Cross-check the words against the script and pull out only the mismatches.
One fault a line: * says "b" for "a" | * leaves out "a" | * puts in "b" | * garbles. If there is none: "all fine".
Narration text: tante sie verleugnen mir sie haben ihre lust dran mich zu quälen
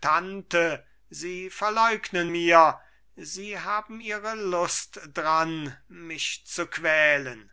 all fine